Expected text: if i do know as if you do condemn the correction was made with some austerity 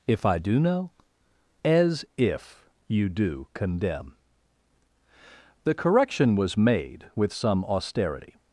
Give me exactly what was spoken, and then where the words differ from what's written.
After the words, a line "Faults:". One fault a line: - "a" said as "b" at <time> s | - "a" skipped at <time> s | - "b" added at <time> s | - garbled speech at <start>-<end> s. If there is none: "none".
if i do know as if you do condemn the correction was made with some austerity
Faults:
none